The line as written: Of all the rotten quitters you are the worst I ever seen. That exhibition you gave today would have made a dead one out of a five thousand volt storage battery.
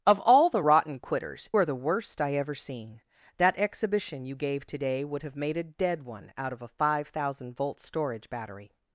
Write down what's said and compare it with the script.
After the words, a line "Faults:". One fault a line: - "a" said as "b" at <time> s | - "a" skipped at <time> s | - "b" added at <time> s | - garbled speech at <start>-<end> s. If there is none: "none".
Of all the rotten quitters are the worst I ever seen. That exhibition you gave today would have made a dead one out of a five thousand volt storage battery.
Faults:
- "you" skipped at 1.5 s